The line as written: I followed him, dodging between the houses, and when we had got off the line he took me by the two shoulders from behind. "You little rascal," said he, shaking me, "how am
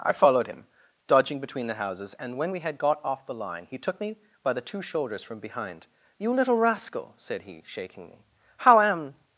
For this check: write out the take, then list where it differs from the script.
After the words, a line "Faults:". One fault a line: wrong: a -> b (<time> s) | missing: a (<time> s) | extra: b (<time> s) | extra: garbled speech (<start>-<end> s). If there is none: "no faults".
I followed him, dodging between the houses, and when we had got off the line he took me by the two shoulders from behind. "You little rascal," said he, shaking me, "how am
Faults:
no faults